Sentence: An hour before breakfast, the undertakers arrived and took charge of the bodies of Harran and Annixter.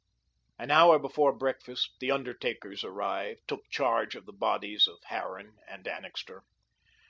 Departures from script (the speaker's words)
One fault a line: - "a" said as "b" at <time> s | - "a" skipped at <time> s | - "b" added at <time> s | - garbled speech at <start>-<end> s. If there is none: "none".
- "and" skipped at 3.5 s